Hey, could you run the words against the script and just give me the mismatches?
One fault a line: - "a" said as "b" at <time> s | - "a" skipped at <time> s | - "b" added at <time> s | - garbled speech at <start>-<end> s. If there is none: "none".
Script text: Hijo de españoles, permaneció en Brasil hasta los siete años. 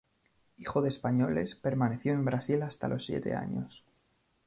none